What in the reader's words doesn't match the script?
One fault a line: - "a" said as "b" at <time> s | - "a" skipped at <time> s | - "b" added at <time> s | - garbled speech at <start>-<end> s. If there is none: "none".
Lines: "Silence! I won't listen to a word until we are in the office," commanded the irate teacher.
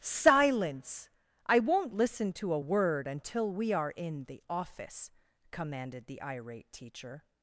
none